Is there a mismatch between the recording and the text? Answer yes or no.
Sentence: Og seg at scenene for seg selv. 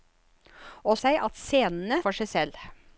no